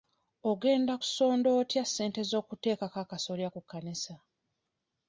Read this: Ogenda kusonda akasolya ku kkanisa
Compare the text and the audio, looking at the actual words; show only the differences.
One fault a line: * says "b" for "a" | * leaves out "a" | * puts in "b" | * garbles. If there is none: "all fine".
* puts in "otya ssente z'okuteekako"